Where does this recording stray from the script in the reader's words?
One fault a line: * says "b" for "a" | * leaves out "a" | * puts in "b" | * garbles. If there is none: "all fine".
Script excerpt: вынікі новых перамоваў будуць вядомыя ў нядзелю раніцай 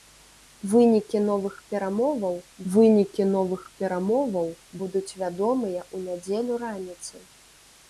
* puts in "вынікі новых перамоваў"